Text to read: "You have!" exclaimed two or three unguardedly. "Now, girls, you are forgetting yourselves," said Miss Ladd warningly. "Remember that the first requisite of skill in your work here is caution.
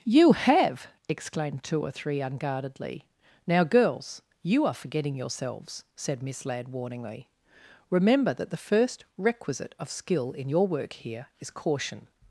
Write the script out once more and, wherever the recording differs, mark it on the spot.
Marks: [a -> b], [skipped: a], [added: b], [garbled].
"You have!" exclaimed two or three unguardedly. "Now, girls, you are forgetting yourselves," said Miss Ladd warningly. "Remember that the first requisite of skill in your work here is caution.